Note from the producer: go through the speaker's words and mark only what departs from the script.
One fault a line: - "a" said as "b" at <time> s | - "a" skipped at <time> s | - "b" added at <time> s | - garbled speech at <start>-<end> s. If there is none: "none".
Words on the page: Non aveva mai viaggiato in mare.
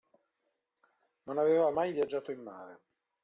none